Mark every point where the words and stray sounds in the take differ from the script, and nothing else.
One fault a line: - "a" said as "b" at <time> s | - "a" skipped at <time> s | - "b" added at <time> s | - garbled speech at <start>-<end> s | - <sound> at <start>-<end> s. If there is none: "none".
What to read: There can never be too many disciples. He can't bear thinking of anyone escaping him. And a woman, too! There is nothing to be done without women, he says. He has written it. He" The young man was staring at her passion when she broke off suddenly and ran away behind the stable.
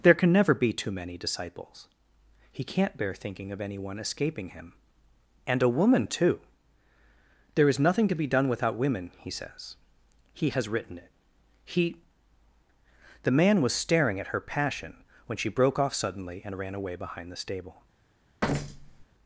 - "young" skipped at 13.3 s
- thud at 18.4-19.1 s